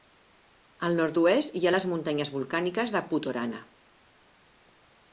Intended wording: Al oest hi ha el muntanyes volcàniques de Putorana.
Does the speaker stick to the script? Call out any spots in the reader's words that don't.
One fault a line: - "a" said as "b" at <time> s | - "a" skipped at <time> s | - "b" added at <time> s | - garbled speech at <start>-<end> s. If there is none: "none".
- "nord" added at 1.0 s
- "el" said as "les" at 1.8 s